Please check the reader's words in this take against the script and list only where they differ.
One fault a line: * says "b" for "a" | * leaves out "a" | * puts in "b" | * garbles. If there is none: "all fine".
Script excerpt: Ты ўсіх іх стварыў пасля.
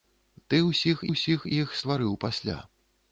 * puts in "ўсіх"